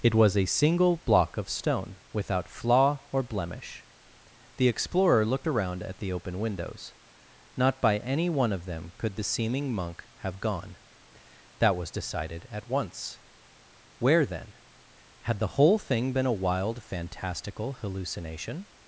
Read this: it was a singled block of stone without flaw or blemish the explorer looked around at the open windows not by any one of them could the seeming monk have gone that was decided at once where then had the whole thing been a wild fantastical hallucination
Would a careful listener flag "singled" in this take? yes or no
yes